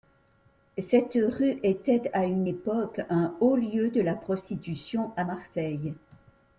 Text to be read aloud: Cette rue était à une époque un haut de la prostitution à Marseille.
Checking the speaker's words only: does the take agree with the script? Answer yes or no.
no